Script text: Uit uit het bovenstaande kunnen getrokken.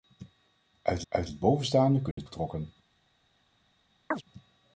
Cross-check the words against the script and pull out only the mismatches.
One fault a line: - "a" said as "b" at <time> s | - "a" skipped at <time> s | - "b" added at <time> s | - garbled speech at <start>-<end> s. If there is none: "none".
none